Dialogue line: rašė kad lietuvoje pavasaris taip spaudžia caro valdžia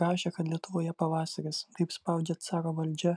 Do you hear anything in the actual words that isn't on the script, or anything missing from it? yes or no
no